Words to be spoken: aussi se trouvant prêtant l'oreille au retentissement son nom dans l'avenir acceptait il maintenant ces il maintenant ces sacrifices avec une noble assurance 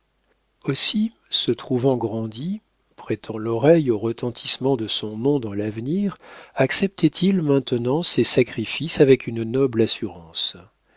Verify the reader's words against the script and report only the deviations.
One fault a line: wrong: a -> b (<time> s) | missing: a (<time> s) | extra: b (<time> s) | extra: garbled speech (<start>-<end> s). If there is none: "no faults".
extra: grandi (1.9 s)
extra: de (4.8 s)
missing: il maintenant ces (8.2 s)